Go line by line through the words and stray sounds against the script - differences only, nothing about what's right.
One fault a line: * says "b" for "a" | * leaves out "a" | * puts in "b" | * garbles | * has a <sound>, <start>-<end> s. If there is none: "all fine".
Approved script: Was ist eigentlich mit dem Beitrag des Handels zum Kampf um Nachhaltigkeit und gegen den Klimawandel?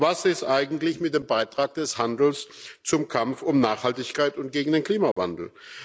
* has a dropout, 5.1-5.2 s